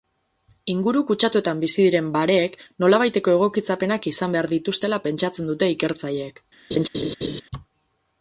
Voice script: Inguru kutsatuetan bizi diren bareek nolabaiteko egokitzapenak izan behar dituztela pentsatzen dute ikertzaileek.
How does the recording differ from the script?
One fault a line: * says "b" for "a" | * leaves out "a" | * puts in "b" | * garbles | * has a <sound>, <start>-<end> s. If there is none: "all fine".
* has a laugh, 6.7-7.4 s